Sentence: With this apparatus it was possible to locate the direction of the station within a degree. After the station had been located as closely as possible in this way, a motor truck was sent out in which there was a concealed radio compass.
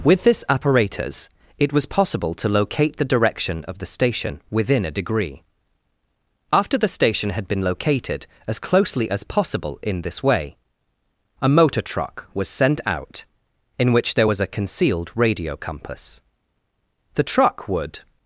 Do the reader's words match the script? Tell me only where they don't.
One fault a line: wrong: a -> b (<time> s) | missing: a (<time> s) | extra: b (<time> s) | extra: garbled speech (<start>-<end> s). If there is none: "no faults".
extra: The truck would (17.1 s)